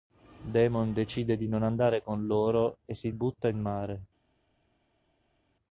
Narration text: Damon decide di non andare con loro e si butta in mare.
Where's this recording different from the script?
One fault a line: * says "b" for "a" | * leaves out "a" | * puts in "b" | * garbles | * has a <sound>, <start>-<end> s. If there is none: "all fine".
all fine